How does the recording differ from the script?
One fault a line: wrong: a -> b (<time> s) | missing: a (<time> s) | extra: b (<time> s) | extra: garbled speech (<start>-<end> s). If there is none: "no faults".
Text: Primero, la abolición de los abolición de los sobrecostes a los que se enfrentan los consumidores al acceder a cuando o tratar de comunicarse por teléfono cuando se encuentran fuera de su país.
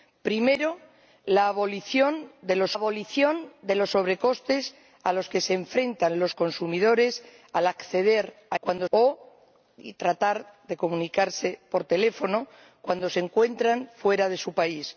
no faults